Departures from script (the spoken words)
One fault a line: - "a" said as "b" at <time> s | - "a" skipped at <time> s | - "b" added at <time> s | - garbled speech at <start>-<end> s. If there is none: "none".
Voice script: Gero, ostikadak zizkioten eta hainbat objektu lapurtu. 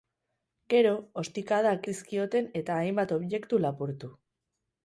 none